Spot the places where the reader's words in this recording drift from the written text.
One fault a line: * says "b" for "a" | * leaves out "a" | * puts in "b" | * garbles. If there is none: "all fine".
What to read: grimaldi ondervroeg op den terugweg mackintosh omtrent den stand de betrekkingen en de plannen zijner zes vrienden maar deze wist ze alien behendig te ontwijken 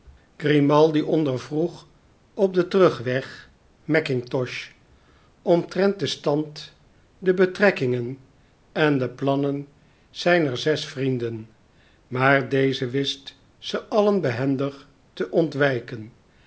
all fine